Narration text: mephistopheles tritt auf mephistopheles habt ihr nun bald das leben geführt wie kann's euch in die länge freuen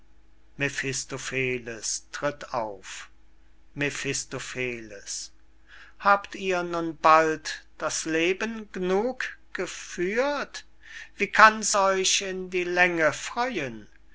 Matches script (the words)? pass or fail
fail